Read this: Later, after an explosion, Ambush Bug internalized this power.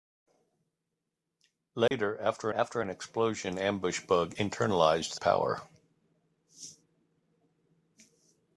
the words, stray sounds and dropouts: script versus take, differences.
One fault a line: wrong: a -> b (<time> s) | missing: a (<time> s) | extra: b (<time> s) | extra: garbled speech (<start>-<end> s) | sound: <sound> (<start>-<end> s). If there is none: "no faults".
sound: dropout (1.9-1.9 s)
extra: after (2.5 s)
missing: this (5.1 s)